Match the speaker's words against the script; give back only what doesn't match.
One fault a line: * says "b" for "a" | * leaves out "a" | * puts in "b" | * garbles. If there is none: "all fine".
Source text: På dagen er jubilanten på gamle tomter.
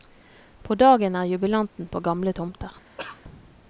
all fine